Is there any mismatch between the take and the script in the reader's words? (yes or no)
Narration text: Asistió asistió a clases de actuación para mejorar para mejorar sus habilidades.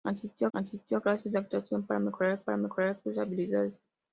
no